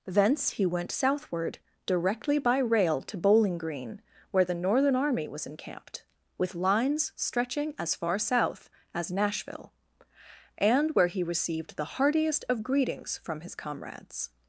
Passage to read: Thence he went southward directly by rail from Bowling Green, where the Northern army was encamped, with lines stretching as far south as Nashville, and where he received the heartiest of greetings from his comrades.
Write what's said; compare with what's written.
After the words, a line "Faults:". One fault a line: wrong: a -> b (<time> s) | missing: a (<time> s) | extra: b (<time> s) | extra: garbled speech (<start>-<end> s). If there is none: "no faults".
Thence he went southward directly by rail to Bowling Green, where the Northern army was encamped, with lines stretching as far south as Nashville, and where he received the heartiest of greetings from his comrades.
Faults:
wrong: from -> to (3.0 s)